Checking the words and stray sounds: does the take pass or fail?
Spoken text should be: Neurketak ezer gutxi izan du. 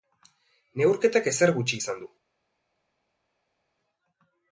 pass